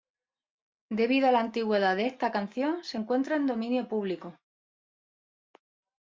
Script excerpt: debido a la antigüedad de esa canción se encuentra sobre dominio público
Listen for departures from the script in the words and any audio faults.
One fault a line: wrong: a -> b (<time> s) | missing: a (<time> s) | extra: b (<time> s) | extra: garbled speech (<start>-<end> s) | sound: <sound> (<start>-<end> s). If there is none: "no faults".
wrong: esa -> esta (2.1 s)
wrong: sobre -> en (3.4 s)